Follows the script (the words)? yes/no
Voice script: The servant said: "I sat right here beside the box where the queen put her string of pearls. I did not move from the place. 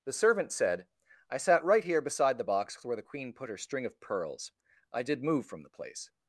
no